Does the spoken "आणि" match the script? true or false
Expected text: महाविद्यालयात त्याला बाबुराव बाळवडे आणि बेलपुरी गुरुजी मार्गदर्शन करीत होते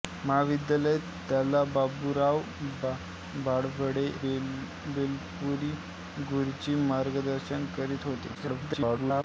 false